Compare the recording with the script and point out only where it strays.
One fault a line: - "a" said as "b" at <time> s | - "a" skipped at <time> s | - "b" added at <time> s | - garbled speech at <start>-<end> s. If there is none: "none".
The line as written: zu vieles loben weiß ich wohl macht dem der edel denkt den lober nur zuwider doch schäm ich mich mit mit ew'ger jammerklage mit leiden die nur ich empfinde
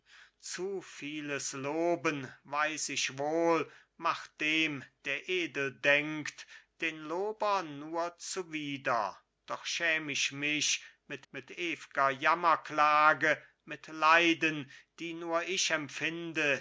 none